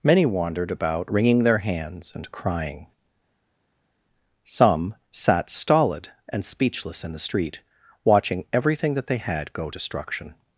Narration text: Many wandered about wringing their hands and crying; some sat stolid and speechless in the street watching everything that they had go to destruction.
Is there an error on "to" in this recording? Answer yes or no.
yes